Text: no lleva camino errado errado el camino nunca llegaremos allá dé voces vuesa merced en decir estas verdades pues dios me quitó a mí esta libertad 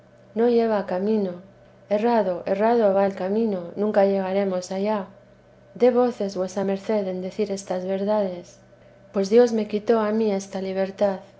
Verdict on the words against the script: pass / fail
fail